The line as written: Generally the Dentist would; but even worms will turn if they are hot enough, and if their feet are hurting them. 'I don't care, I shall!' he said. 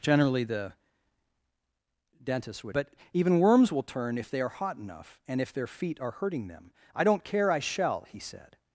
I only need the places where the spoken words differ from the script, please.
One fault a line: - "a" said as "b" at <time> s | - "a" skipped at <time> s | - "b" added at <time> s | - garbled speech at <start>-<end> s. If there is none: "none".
none